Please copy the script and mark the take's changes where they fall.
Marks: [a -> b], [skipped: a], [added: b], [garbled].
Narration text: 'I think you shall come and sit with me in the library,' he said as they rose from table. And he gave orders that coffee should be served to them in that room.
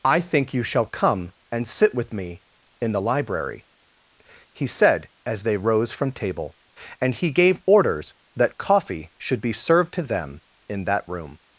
'I think you shall come and sit with me in the library,' he said as they rose from table. And he gave orders that coffee should be served to them in that room.